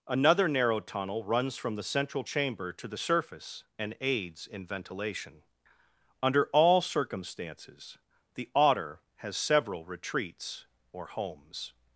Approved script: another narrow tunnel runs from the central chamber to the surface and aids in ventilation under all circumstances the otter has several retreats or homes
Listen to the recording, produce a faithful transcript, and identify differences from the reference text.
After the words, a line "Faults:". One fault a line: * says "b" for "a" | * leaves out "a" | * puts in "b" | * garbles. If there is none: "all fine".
another narrow tunnel runs from the central chamber to the surface and aids in ventilation under all circumstances the otter has several retreats or homes
Faults:
all fine